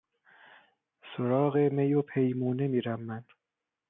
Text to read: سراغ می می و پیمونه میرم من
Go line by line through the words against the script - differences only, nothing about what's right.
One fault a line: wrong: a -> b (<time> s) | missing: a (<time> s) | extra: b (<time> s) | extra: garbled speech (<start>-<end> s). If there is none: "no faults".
missing: می (1.9 s)